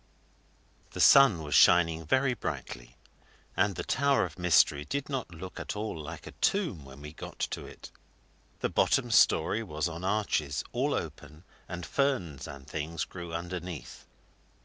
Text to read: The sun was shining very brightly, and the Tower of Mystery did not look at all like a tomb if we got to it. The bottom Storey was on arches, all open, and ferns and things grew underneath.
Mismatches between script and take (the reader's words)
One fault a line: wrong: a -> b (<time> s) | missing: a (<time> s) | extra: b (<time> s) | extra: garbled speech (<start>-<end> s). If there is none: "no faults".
wrong: if -> when (6.9 s)